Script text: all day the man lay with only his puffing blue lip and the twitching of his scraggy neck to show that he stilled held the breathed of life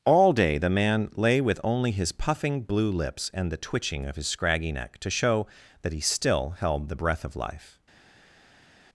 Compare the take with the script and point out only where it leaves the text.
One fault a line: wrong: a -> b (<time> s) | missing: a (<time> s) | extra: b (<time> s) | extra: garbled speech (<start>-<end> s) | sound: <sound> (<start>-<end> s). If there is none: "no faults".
wrong: lip -> lips (2.9 s)
wrong: stilled -> still (6.0 s)
wrong: breathed -> breath (6.9 s)